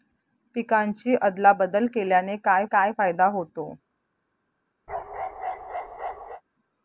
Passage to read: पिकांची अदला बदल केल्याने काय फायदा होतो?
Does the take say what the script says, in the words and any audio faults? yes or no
no